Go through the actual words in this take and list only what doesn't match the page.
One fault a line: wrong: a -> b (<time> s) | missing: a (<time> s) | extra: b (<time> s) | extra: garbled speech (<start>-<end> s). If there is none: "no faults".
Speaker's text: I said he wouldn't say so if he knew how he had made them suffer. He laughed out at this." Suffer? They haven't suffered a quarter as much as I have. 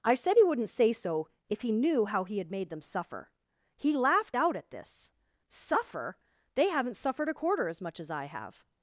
no faults